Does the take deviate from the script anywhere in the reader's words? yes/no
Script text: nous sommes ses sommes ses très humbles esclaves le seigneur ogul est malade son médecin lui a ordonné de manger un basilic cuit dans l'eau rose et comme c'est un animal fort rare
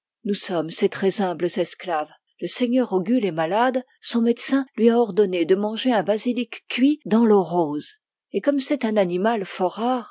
yes